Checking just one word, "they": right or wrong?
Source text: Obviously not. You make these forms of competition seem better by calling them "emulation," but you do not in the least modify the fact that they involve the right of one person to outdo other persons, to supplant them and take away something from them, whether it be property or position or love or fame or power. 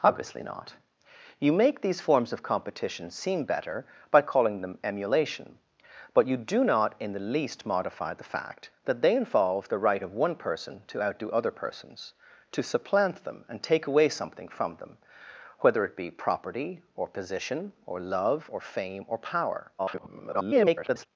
right